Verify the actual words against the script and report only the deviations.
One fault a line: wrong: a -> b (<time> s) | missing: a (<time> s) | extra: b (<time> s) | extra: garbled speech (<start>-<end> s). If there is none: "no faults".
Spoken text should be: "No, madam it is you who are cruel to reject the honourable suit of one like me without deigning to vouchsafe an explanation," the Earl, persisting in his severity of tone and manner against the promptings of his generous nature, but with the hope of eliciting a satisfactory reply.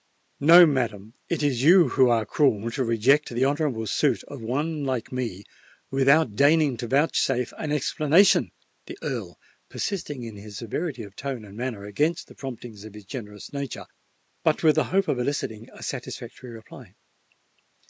no faults